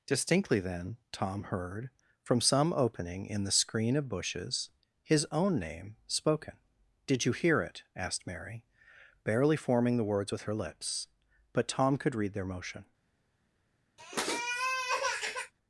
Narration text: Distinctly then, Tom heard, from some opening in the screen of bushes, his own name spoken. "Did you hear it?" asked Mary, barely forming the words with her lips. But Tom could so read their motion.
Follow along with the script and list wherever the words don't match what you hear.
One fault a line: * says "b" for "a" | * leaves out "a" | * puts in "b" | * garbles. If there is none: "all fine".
* leaves out "so"